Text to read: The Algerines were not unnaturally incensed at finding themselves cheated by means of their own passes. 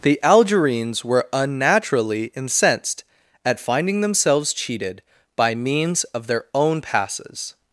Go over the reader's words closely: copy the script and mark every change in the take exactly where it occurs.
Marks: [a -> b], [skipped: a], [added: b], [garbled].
The Algerines were [skipped: not] unnaturally incensed at finding themselves cheated by means of their own passes.